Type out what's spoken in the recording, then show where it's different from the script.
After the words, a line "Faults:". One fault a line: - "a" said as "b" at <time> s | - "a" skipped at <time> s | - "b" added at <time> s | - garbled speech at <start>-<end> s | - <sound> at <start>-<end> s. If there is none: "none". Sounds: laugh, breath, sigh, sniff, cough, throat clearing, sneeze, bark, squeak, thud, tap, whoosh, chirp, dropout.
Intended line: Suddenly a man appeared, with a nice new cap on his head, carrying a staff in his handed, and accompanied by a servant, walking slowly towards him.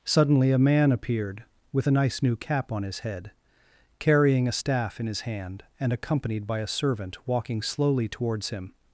Suddenly a man appeared, with a nice new cap on his head, carrying a staff in his hand, and accompanied by a servant, walking slowly towards him.
Faults:
- "handed" said as "hand" at 5.2 s